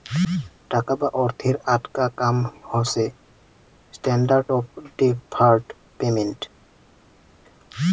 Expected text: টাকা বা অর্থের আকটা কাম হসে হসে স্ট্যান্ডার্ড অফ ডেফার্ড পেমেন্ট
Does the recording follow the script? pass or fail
fail